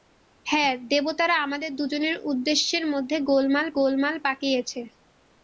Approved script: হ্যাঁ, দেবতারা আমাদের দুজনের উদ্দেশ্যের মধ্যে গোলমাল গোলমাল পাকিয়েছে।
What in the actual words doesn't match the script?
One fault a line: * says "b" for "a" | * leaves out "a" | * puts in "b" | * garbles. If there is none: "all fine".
all fine